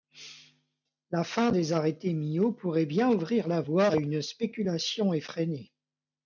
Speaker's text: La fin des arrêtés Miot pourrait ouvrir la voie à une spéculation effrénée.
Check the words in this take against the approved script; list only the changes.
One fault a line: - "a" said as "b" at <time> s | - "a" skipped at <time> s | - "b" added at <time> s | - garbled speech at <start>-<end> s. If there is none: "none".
- "bien" added at 2.9 s